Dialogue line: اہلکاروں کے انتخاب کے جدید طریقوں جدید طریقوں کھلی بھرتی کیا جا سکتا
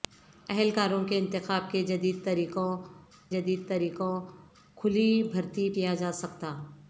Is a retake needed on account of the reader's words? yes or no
no